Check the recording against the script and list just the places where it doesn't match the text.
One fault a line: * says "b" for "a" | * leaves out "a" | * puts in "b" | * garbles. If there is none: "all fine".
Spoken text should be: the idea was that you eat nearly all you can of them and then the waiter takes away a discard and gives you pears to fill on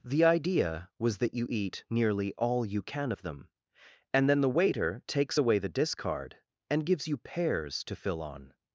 * says "the" for "a"